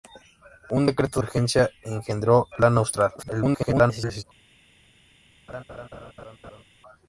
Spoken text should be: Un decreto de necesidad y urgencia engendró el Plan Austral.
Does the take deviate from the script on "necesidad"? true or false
true